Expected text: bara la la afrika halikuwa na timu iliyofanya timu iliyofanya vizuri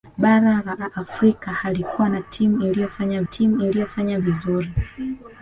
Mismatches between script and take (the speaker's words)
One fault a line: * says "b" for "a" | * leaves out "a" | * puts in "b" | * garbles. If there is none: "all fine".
all fine